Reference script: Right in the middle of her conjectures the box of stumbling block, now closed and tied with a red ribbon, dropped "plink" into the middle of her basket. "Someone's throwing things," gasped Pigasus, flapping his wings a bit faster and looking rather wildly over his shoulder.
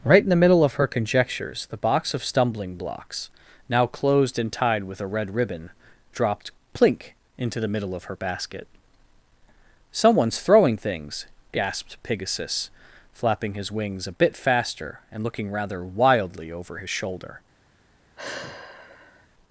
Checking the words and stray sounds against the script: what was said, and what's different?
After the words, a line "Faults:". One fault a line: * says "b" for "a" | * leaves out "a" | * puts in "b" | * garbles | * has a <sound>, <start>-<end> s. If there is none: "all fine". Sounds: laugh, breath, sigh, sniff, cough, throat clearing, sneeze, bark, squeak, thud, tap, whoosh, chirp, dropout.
Right in the middle of her conjectures the box of stumbling blocks, now closed and tied with a red ribbon, dropped "plink" into the middle of her basket. "Someone's throwing things," gasped Pigasus, flapping his wings a bit faster and looking rather wildly over his shoulder.
Faults:
* says "blocks" for "block"
* has a sigh, 18.2-19.3 s